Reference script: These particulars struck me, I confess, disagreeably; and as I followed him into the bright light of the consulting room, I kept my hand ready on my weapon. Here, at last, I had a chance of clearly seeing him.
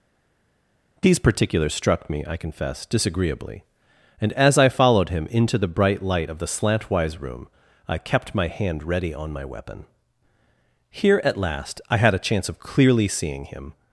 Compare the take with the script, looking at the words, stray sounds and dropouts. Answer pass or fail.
fail